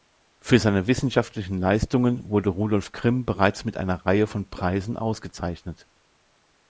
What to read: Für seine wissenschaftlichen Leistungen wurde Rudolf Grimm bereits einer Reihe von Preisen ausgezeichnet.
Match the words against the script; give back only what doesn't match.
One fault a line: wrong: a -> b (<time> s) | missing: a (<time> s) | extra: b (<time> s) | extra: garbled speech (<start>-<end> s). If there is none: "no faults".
extra: mit (3.6 s)